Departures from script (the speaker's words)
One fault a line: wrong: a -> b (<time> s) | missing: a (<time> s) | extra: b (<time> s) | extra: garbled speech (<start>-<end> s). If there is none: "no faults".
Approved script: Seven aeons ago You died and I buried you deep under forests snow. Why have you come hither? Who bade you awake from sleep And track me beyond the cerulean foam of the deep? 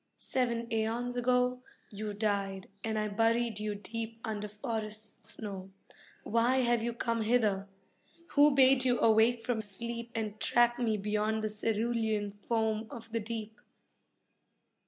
no faults